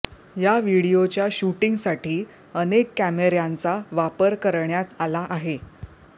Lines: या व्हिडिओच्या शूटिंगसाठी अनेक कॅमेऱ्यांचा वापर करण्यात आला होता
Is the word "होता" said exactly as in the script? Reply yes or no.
no